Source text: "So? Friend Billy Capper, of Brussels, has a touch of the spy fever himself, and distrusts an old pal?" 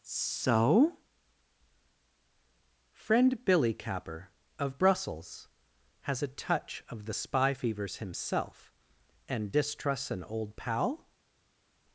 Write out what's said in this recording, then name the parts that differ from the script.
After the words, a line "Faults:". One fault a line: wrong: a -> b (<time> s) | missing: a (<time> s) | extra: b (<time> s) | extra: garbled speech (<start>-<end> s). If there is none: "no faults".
"So? Friend Billy Capper, of Brussels, has a touch of the spy fevers himself, and distrusts an old pal?"
Faults:
wrong: fever -> fevers (7.5 s)